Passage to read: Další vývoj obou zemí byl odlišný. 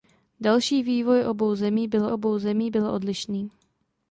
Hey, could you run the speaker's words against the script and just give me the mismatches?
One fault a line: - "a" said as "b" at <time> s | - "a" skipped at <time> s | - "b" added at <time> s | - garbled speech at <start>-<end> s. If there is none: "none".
- "obou zemí byl" added at 2.1 s